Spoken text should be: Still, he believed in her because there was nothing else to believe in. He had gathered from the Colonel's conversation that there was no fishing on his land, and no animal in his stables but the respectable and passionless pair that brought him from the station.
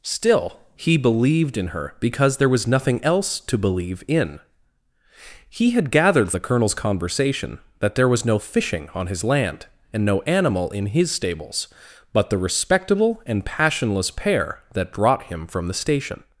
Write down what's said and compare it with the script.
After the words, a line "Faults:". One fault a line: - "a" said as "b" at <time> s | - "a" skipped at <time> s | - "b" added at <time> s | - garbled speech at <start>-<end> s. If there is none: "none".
Still, he believed in her because there was nothing else to believe in. He had gathered the Colonel's conversation that there was no fishing on his land, and no animal in his stables but the respectable and passionless pair that brought him from the station.
Faults:
- "from" skipped at 6.3 s